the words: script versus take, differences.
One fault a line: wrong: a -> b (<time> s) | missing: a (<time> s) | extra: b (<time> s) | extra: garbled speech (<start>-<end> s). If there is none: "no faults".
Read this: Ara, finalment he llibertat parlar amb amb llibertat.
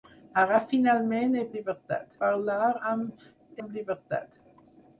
no faults